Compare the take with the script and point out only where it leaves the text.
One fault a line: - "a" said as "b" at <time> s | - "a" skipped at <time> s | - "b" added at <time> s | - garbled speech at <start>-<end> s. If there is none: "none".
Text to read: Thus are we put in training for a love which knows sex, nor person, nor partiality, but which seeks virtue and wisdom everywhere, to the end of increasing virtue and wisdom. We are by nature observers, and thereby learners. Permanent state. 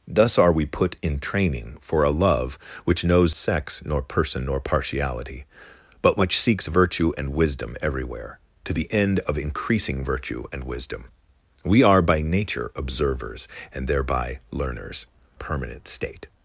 none